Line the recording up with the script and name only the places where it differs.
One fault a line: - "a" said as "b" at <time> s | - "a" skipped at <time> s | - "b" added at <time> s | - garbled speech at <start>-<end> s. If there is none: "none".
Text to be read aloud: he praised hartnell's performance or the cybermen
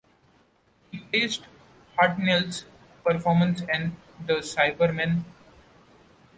- "or" said as "and" at 3.7 s